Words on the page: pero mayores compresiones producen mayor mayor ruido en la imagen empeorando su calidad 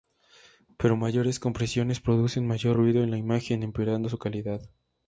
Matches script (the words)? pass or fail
fail